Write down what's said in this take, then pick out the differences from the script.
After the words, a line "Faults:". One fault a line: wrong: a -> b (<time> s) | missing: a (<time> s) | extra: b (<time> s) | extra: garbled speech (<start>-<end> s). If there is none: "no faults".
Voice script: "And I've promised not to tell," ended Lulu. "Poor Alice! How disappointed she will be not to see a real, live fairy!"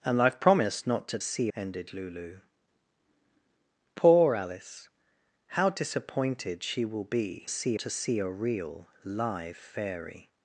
"And I've promised not to see," ended Lulu. "Poor Alice! How disappointed she will be see to see a real, live fairy!"
Faults:
wrong: tell -> see (1.2 s)
wrong: not -> see (7.5 s)